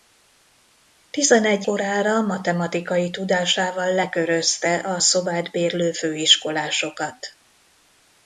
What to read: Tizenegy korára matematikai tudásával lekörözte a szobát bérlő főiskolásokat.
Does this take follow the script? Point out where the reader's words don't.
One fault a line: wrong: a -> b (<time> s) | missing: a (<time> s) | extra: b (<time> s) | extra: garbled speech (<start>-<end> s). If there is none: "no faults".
no faults